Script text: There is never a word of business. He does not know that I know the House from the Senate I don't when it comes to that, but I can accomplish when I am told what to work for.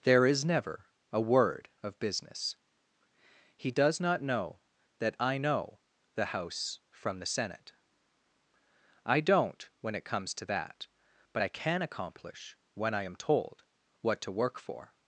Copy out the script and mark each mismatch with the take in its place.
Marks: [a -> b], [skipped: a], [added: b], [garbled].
There is never a word of business. He does not know that I know the House from the Senate I don't when it comes to that, but I can accomplish when I am told what to work for.